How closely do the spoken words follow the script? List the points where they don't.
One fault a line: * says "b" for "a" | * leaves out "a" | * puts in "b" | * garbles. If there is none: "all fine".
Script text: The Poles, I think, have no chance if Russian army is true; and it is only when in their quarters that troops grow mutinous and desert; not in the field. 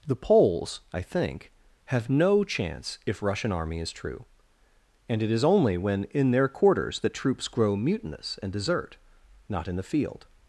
all fine